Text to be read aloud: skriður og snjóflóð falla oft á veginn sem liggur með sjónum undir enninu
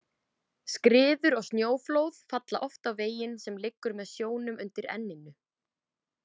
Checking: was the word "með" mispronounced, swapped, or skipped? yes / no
no